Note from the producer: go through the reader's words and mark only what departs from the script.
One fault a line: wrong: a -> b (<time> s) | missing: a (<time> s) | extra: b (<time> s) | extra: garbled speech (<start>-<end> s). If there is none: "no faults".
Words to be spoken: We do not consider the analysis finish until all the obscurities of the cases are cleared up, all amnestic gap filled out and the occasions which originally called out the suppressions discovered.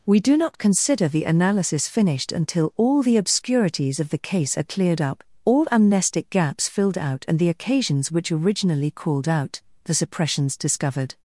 wrong: finish -> finished (1.9 s)
wrong: cases -> case (4.2 s)
wrong: gap -> gaps (6.3 s)